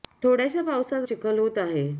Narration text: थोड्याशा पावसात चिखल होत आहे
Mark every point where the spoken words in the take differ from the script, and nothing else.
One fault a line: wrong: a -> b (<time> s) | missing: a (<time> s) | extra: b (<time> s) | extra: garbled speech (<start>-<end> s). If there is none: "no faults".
no faults